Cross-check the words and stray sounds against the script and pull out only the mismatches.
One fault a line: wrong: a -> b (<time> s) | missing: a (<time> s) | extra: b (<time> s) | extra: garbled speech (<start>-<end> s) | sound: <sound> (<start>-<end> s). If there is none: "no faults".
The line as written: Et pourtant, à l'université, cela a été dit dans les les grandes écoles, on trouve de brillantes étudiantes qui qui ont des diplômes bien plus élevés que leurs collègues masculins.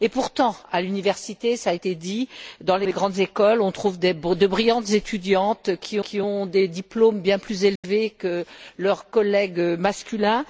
sound: dropout (7.8-7.8 s)